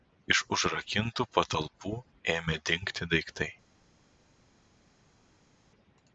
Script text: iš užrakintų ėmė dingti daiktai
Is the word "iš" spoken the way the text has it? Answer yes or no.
yes